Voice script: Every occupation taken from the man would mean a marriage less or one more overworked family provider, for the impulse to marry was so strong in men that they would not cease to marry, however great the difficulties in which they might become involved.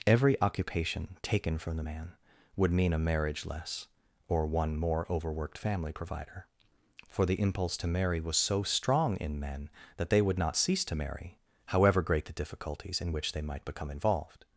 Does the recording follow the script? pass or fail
pass